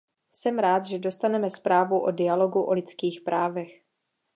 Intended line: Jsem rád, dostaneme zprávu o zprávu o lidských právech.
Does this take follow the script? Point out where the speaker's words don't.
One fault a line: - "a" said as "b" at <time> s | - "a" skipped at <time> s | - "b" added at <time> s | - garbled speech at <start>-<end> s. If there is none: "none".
- "že" added at 0.8 s
- "zprávu" said as "dialogu" at 2.1 s